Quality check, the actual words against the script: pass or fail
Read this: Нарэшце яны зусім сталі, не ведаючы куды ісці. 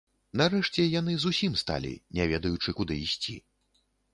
pass